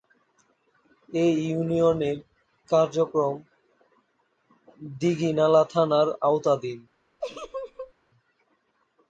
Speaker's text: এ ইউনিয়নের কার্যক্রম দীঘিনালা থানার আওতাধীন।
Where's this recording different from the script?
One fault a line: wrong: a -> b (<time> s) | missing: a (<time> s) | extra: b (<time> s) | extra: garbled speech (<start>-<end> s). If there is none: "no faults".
no faults